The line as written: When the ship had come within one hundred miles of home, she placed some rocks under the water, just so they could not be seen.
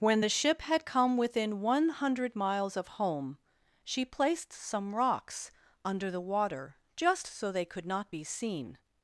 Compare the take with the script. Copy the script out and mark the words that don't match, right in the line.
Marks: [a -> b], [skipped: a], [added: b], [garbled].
When the ship had come within one hundred miles of home, she placed some rocks under the water, just so they could not be seen.